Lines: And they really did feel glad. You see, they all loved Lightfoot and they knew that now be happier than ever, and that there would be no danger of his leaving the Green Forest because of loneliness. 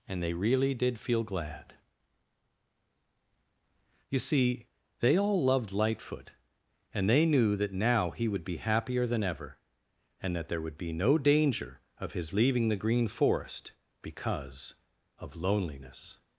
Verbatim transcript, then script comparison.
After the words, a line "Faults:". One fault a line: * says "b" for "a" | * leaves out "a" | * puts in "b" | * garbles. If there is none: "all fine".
And they really did feel glad. You see, they all loved Lightfoot and they knew that now he would be happier than ever, and that there would be no danger of his leaving the Green Forest because of loneliness.
Faults:
* puts in "he would"